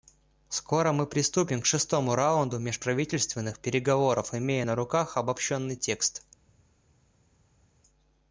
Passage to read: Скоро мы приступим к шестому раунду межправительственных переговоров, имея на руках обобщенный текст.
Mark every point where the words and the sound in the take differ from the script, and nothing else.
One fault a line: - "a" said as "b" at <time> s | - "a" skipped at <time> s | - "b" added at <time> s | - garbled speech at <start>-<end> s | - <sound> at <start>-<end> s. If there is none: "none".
none